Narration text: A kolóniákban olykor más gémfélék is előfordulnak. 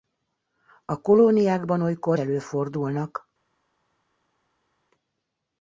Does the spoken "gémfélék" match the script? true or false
false